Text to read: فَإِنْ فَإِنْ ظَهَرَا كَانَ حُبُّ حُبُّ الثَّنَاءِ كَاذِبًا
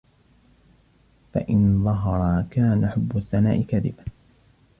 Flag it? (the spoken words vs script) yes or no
yes